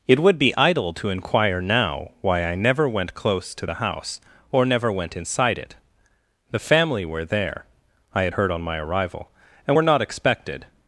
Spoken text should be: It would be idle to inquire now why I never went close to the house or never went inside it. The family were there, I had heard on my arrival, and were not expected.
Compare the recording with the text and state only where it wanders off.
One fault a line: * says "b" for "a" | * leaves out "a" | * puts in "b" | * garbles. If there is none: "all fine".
all fine